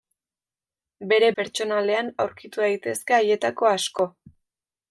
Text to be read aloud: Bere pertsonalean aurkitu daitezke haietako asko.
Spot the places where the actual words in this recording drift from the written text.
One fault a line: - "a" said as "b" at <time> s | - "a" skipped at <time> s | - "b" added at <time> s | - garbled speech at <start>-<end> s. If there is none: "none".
none